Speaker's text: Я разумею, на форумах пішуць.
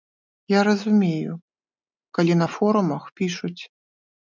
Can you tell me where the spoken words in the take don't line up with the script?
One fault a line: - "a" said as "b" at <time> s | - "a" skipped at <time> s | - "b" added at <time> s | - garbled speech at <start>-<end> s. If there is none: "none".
- "калі" added at 2.2 s